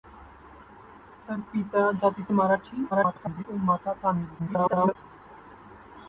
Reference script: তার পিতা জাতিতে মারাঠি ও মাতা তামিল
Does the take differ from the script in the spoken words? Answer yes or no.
yes